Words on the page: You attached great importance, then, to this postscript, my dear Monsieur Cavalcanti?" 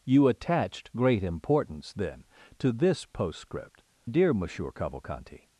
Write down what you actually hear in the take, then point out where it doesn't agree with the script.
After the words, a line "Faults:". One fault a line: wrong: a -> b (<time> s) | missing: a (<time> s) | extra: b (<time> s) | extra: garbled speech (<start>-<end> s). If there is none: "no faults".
You attached great importance, then, to this postscript, dear Monsieur Cavalcanti?"
Faults:
missing: my (3.8 s)